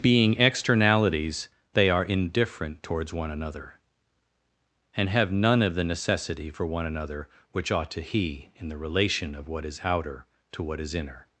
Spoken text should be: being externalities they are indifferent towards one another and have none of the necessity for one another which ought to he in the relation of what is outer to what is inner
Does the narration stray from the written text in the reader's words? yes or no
no